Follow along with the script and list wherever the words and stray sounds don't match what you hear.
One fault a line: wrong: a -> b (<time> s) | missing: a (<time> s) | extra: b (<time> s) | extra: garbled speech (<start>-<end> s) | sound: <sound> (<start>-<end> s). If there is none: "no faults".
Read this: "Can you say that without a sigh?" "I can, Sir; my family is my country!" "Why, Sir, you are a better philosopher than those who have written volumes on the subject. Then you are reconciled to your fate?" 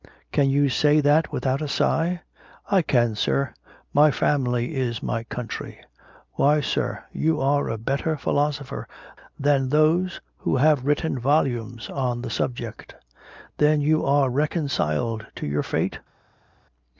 no faults